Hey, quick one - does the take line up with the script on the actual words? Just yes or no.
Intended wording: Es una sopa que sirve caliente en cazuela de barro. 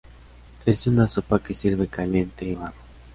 no